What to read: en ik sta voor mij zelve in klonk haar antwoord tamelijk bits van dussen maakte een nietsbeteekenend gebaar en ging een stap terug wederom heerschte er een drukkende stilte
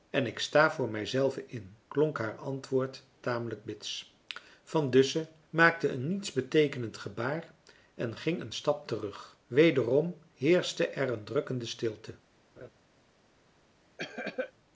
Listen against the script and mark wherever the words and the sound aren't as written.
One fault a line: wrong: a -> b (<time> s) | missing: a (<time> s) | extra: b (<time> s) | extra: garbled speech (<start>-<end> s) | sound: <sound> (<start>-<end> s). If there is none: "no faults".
sound: laugh (12.6-12.7 s)
sound: cough (14.0-14.5 s)